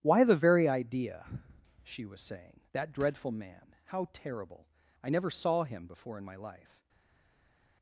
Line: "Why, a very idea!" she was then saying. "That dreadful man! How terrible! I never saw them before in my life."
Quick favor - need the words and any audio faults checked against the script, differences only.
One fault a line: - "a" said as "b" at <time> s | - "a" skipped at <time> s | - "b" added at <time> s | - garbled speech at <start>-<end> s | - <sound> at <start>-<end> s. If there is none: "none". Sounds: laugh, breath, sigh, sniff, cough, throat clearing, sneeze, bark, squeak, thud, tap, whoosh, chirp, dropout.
- "a" said as "the" at 0.2 s
- "then" skipped at 2.2 s
- "them" said as "him" at 5.6 s